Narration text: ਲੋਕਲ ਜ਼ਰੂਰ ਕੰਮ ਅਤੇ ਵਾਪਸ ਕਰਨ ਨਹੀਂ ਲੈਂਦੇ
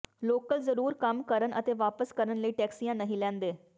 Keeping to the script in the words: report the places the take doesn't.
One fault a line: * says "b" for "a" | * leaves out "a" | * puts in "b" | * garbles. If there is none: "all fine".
* puts in "ਕਰਨ"
* puts in "ਲਈ ਟੈਕਸੀਆਂ"